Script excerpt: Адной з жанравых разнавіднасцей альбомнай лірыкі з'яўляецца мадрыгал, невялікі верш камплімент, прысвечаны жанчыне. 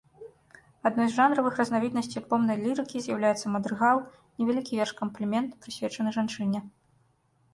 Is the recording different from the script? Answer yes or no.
no